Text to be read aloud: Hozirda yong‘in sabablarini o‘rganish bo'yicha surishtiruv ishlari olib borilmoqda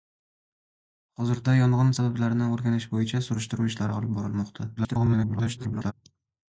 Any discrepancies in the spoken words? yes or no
yes